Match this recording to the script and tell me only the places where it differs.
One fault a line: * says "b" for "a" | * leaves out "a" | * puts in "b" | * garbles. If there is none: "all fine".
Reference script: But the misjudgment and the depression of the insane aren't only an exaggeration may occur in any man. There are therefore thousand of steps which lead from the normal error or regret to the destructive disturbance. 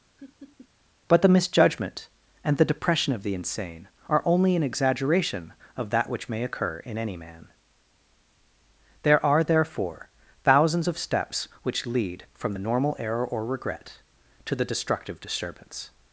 * says "are" for "aren't"
* puts in "of that which"
* says "thousands" for "thousand"